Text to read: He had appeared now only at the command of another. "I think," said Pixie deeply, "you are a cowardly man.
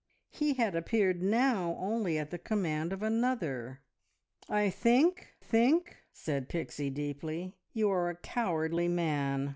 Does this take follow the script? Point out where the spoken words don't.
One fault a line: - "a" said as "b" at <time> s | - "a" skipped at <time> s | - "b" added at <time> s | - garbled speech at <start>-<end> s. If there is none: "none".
- "think" added at 5.4 s